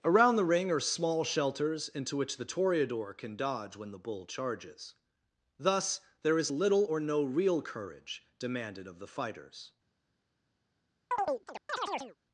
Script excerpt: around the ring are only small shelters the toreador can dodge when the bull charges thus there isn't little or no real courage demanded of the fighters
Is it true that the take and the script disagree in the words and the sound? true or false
true